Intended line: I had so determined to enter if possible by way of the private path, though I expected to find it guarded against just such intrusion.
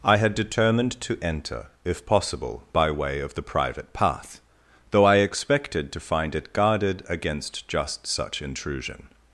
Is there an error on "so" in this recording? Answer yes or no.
yes